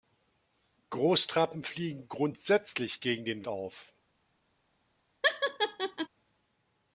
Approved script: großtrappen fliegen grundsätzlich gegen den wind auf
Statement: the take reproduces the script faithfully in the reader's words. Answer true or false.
false